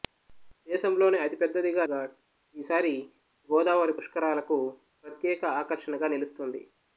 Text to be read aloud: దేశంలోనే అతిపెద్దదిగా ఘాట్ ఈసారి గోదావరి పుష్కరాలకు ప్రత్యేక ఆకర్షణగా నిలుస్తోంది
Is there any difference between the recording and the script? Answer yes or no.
no